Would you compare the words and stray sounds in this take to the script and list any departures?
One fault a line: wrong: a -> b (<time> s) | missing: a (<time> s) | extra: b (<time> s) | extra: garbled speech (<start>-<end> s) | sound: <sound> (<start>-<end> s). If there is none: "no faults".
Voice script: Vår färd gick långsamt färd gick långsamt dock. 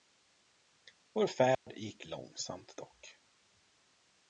sound: dropout (1.5-1.7 s)
missing: färd gick långsamt (2.8 s)